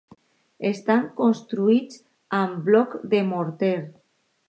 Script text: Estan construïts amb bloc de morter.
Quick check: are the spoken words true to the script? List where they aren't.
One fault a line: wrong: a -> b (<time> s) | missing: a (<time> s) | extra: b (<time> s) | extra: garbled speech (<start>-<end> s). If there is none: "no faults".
no faults